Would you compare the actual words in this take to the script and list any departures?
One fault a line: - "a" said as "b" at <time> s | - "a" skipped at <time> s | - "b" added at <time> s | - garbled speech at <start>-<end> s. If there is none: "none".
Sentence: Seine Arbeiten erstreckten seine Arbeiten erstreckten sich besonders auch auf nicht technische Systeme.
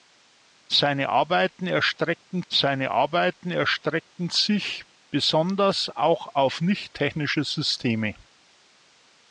none